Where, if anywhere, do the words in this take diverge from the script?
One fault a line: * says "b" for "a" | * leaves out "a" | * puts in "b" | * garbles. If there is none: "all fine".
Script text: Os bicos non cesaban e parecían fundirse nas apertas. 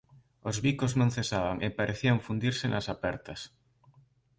all fine